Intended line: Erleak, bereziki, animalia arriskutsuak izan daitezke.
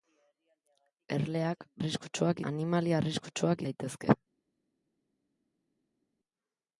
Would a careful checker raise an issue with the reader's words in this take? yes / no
yes